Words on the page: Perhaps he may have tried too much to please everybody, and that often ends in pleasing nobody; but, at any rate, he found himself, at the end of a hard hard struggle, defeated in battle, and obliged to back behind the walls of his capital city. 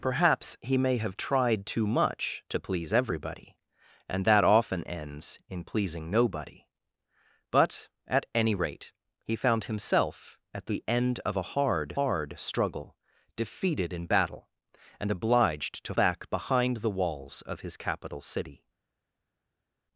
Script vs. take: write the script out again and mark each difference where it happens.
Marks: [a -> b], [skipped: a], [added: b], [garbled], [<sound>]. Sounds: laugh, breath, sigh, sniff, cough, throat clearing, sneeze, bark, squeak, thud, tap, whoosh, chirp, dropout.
Perhaps he may have tried too much to please everybody, and that often ends in pleasing nobody; but, at any rate, he found himself, at the end of a hard hard struggle, defeated in battle, and obliged to back behind the walls of his capital city.